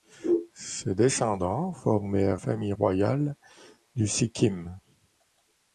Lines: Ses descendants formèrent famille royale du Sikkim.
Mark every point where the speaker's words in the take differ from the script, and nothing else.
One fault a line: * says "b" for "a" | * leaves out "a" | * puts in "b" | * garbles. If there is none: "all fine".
all fine